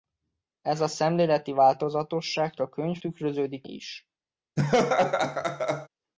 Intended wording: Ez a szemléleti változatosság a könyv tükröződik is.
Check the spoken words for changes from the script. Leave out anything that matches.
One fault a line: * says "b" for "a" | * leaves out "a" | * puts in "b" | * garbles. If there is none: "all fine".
all fine